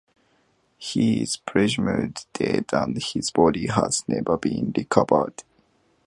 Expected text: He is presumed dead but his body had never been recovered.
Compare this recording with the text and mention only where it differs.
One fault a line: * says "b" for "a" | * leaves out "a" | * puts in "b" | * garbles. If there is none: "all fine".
* says "and" for "but"
* says "has" for "had"